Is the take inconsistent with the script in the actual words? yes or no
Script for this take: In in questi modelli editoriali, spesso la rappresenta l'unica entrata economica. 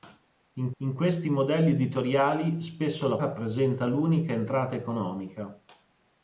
no